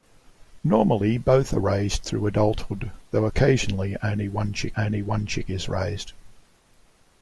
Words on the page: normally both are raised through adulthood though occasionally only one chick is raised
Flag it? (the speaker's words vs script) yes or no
yes